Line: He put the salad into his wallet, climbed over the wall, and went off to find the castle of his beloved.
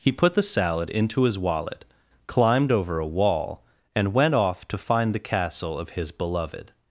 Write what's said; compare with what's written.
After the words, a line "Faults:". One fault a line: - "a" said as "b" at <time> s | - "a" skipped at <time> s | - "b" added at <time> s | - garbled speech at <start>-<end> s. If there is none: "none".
He put the salad into his wallet, climbed over a wall, and went off to find the castle of his beloved.
Faults:
- "the" said as "a" at 3.0 s